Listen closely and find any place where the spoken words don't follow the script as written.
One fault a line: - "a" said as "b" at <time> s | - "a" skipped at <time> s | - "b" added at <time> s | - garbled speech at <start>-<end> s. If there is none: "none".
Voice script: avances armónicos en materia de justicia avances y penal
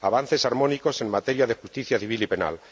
- "avances" said as "civil" at 2.0 s